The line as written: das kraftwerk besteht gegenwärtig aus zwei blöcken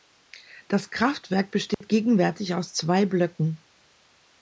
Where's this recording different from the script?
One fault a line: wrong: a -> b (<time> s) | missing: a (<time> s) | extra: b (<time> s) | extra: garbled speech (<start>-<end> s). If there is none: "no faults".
no faults